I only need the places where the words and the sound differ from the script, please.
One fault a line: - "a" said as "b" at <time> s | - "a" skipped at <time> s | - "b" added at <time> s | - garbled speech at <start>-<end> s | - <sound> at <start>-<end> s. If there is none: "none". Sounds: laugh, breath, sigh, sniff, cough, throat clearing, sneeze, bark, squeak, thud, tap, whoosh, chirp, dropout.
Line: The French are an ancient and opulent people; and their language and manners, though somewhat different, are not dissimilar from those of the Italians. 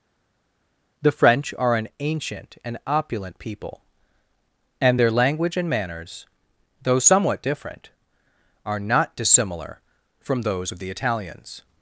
none